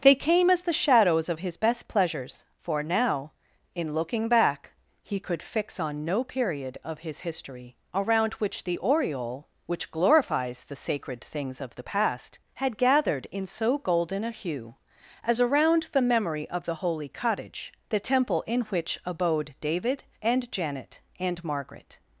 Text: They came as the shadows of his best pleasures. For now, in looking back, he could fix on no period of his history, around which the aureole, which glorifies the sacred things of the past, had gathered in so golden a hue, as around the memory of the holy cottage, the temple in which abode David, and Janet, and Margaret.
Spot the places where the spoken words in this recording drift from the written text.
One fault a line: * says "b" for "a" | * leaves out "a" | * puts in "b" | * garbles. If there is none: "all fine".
all fine